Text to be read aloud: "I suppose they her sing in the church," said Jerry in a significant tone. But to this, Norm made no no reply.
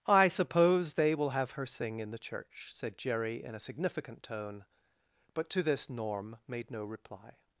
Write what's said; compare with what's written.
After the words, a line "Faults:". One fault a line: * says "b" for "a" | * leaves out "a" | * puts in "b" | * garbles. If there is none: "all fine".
"I suppose they will have her sing in the church," said Jerry in a significant tone. But to this, Norm made no reply.
Faults:
* puts in "will have"
* leaves out "no"